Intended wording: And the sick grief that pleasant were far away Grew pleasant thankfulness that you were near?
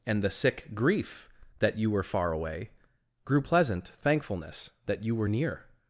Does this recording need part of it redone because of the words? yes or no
yes